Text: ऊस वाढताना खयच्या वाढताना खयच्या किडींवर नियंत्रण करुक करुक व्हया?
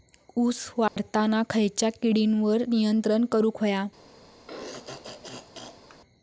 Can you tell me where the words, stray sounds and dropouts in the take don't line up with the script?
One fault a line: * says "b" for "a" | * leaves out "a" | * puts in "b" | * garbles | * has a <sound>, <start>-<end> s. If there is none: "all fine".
* has a dropout, 0.9-1.0 s
* leaves out "वाढताना खयच्या"
* leaves out "करुक"
* has a throat clearing, 4.5-6.0 s